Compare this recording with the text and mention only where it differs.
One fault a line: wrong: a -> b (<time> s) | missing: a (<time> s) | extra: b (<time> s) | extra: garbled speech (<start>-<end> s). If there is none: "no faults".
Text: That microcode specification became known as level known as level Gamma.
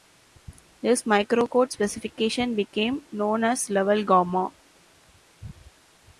wrong: That -> This (0.8 s)
missing: known as level (4.0 s)